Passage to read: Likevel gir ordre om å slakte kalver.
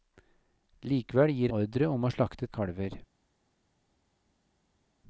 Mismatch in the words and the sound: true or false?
false